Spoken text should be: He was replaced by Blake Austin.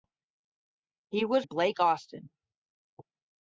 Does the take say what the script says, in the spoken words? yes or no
no